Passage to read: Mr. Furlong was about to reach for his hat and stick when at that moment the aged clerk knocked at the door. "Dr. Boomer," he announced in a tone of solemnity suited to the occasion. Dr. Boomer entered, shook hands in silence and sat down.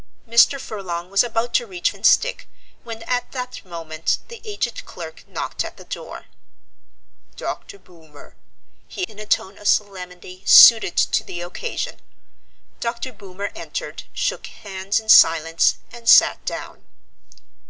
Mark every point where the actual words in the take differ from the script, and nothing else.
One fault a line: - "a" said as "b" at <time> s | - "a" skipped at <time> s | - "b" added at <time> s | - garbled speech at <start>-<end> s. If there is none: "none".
- "for his hat" skipped at 1.9 s
- "announced" skipped at 9.1 s